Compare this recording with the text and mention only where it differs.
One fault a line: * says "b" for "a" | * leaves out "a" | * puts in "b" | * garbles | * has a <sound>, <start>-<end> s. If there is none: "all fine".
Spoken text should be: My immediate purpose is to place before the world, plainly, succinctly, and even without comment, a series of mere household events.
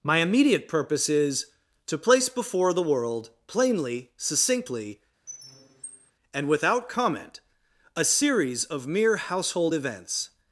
* has a squeak, 5.3-6.1 s
* leaves out "even"